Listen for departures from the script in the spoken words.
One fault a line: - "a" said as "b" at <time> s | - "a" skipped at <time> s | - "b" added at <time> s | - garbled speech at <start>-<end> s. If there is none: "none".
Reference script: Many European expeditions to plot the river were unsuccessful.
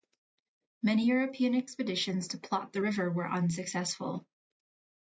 none